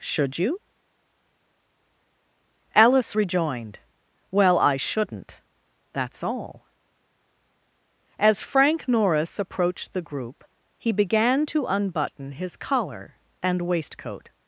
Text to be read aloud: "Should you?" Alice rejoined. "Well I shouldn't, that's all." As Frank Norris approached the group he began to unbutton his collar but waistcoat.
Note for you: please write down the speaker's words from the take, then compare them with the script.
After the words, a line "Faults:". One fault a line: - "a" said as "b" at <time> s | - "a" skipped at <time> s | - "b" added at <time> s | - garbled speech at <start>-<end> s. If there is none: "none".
"Should you?" Alice rejoined. "Well I shouldn't, that's all." As Frank Norris approached the group he began to unbutton his collar and waistcoat.
Faults:
- "but" said as "and" at 13.4 s